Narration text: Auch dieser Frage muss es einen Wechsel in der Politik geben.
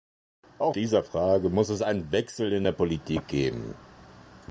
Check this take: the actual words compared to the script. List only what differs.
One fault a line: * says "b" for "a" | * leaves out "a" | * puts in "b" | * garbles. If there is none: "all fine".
all fine